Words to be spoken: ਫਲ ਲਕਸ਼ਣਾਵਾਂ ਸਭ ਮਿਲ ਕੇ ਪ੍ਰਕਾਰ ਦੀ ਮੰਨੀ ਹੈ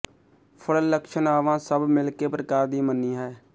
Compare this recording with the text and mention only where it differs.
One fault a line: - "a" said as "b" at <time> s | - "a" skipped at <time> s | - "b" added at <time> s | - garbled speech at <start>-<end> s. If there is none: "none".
none